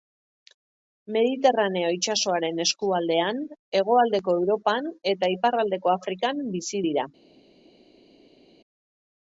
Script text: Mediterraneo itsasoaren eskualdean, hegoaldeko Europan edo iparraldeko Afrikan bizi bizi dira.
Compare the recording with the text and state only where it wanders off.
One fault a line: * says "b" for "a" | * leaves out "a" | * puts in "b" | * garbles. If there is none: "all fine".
* says "eta" for "edo"
* leaves out "bizi"